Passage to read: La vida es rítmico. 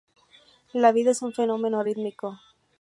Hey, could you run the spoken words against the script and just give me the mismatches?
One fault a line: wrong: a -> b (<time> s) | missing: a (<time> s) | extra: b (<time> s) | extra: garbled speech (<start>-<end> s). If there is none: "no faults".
extra: un fenómeno (1.2 s)